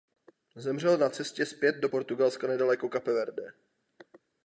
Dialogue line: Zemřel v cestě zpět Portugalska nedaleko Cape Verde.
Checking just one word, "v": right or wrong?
wrong